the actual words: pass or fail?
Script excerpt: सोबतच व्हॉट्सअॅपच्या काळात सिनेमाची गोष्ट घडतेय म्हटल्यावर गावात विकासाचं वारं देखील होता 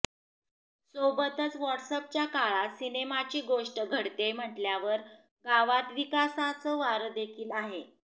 fail